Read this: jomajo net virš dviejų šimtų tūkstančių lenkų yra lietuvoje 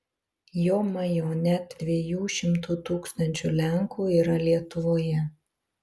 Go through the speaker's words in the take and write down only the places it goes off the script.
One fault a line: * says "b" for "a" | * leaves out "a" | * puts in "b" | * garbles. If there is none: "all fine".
* leaves out "virš"